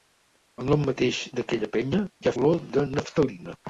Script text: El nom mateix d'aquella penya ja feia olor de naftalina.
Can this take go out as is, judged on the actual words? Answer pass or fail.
fail